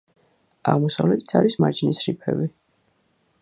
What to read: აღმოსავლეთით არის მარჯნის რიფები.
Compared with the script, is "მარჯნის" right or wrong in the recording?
right